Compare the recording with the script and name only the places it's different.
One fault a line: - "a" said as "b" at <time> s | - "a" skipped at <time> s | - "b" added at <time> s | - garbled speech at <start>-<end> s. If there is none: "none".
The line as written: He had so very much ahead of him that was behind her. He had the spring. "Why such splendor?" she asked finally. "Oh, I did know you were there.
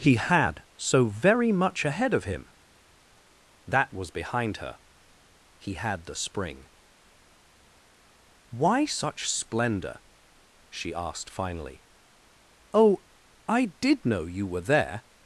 none